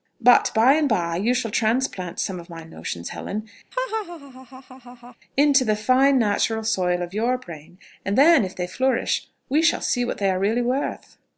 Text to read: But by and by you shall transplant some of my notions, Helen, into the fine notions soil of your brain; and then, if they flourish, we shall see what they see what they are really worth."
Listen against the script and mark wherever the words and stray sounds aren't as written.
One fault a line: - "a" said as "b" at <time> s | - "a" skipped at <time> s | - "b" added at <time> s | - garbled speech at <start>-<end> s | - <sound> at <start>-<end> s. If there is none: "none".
- laugh at 3.7-5.2 s
- "notions" said as "natural" at 6.2 s
- "see what they" skipped at 10.3 s